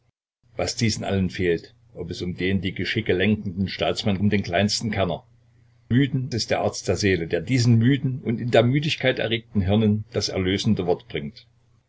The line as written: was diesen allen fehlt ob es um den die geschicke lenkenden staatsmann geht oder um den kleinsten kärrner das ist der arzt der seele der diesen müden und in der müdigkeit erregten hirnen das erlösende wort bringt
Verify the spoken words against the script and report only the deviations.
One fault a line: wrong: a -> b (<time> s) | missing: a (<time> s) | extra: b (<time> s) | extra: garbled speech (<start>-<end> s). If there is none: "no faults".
missing: geht oder (4.2 s)
wrong: das -> müden (5.9 s)